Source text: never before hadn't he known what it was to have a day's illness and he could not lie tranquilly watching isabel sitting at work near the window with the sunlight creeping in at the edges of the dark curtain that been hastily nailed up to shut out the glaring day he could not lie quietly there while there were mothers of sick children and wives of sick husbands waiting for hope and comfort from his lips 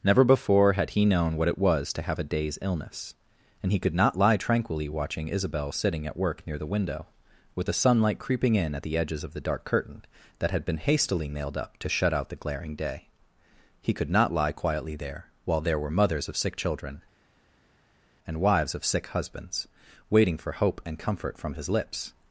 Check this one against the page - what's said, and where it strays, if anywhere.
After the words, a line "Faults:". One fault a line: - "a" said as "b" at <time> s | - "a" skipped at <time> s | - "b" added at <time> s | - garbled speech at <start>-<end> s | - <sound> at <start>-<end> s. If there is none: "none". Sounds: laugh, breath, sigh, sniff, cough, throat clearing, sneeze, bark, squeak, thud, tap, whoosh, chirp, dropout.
never before had he known what it was to have a day's illness and he could not lie tranquilly watching isabel sitting at work near the window with the sunlight creeping in at the edges of the dark curtain that had been hastily nailed up to shut out the glaring day he could not lie quietly there while there were mothers of sick children and wives of sick husbands waiting for hope and comfort from his lips
Faults:
- "hadn't" said as "had" at 0.7 s
- "had" added at 10.5 s